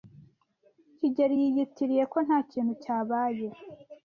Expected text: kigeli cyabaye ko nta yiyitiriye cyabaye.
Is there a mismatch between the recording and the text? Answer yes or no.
yes